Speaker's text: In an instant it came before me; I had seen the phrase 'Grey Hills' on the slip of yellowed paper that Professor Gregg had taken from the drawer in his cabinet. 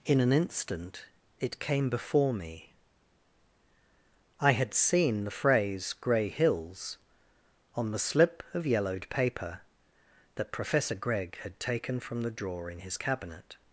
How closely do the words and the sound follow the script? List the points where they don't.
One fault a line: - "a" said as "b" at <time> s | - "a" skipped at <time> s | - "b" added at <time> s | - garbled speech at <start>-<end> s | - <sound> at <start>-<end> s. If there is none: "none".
none